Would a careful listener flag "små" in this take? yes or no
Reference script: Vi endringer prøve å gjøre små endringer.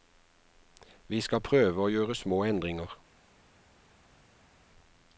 no